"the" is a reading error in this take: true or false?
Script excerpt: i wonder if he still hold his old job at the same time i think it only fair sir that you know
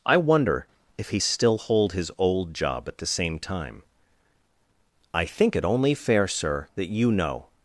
false